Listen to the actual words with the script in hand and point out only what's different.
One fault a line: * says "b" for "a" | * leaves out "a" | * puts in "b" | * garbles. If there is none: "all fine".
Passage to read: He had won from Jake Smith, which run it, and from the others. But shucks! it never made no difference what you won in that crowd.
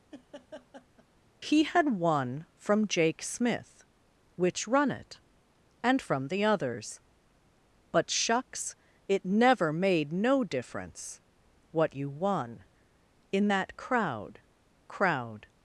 * puts in "crowd"